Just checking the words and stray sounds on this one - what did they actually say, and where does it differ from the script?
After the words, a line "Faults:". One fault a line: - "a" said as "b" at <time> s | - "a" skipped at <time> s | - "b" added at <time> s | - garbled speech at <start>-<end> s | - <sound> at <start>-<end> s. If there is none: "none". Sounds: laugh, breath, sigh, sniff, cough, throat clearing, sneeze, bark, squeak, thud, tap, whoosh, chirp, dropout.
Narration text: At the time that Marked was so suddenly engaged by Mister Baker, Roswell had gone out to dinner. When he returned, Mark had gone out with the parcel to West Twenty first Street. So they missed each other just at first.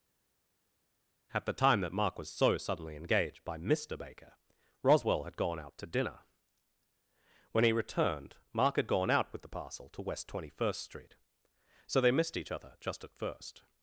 At the time that Mark was so suddenly engaged by Mister Baker, Roswell had gone out to dinner. When he returned, Mark had gone out with the parcel to West Twenty first Street. So they missed each other just at first.
Faults:
- "Marked" said as "Mark" at 1.9 s